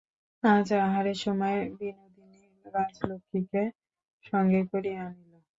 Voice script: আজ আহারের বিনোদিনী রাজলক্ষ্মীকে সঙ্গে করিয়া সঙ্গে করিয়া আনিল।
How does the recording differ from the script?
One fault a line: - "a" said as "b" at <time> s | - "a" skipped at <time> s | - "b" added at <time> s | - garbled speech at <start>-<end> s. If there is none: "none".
- "সময়" added at 1.2 s
- "সঙ্গে করিয়া" skipped at 5.0 s